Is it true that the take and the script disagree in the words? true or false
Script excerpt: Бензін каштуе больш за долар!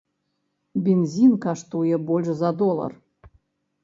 false